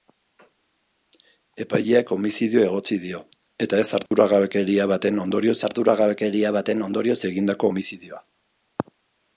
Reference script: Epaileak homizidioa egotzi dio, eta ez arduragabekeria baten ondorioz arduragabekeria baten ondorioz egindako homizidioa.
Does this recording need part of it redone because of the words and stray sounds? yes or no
yes